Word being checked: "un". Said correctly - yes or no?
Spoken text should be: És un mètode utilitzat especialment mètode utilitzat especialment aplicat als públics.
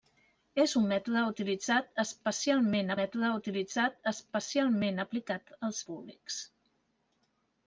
yes